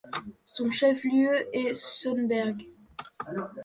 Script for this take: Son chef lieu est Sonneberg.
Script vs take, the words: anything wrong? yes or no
no